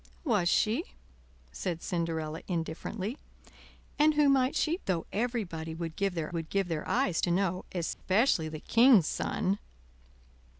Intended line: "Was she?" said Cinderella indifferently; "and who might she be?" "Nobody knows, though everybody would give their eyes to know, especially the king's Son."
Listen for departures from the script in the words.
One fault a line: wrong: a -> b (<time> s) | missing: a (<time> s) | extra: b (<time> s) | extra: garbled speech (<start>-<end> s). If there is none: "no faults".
wrong: be Nobody knows though everybody -> though everybody would give their (4.8 s)